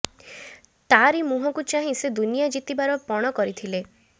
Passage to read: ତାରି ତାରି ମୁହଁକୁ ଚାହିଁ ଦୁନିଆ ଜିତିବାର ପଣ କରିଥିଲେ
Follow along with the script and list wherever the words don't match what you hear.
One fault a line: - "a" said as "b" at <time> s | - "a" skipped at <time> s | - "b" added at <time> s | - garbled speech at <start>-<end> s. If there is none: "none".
- "ତାରି" skipped at 1.2 s
- "ସେ" added at 2.0 s